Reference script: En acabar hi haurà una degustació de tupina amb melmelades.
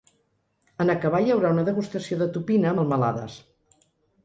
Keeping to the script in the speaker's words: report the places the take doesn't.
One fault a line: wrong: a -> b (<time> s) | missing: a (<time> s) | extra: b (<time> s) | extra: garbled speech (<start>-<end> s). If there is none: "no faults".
missing: amb (2.8 s)